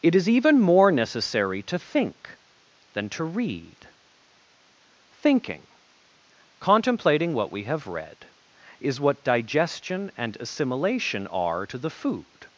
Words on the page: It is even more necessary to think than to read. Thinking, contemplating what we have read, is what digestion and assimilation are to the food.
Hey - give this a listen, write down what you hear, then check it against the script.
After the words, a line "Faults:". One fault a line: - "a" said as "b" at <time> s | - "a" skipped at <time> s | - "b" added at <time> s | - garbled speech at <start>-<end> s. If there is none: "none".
It is even more necessary to think than to read. Thinking, contemplating what we have read, is what digestion and assimilation are to the food.
Faults:
none